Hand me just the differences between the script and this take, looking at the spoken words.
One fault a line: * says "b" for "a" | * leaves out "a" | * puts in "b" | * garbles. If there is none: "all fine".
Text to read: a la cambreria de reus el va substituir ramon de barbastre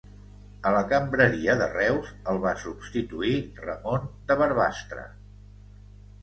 all fine